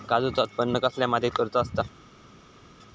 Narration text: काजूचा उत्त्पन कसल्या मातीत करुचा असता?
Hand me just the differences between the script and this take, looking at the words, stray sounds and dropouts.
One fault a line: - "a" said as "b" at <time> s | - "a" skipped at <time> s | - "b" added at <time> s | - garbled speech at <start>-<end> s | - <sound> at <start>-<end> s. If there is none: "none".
none